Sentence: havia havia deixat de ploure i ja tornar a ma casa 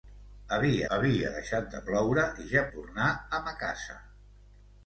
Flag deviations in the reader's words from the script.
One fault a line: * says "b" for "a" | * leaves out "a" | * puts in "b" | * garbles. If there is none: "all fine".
all fine